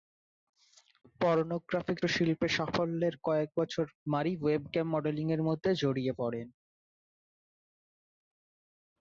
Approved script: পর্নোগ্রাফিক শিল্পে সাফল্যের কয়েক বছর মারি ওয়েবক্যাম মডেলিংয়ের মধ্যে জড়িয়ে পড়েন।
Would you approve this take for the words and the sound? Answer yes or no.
yes